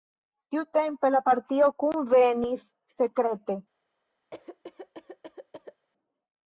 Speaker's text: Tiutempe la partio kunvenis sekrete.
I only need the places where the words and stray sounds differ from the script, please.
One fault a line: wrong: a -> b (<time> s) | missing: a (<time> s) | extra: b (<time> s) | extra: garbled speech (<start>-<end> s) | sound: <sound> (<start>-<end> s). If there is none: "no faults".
sound: cough (4.3-5.9 s)